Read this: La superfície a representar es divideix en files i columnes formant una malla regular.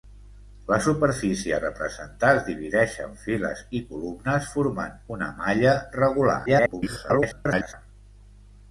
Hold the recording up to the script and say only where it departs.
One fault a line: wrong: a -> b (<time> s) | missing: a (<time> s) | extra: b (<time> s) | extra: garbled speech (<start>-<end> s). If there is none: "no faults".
extra: garbled speech (6.5-7.7 s)